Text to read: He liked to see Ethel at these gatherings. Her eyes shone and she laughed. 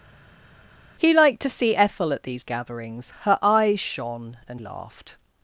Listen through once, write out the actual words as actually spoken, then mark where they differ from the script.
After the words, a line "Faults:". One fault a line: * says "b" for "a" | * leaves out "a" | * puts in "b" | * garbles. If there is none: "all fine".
He liked to see Ethel at these gatherings. Her eyes shone and laughed.
Faults:
* leaves out "she"